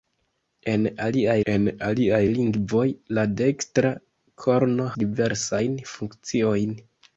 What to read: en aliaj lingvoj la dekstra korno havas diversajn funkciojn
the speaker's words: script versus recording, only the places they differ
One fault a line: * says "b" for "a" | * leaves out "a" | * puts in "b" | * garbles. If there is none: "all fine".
* puts in "en aliaj"
* leaves out "havas"